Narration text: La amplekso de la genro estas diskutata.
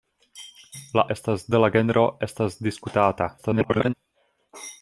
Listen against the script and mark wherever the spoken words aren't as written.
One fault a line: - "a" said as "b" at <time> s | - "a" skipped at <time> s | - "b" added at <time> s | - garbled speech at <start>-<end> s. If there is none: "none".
- "amplekso" said as "estas" at 1.2 s
- garbled speech at 3.4-3.9 s